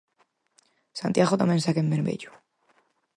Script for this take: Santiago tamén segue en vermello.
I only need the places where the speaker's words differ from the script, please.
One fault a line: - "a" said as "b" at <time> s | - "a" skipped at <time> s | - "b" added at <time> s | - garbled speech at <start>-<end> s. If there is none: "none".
none